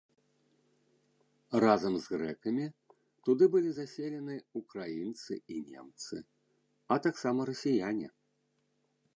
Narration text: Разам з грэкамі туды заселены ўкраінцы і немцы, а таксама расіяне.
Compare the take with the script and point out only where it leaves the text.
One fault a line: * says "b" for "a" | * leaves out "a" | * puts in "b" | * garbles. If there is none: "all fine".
* puts in "былі"